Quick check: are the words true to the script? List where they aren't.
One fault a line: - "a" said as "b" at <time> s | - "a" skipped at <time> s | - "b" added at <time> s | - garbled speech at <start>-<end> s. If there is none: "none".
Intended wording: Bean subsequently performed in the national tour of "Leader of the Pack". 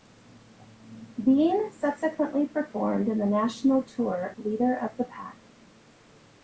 - "of" skipped at 4.3 s